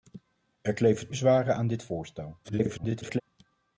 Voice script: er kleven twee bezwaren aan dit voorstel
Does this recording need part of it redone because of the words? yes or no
yes